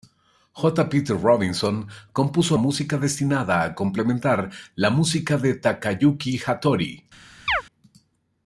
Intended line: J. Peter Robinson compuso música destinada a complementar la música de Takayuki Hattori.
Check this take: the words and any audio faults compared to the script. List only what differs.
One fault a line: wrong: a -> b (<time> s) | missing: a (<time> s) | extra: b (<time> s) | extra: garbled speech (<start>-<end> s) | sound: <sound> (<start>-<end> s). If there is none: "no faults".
sound: chirp (7.5-7.6 s)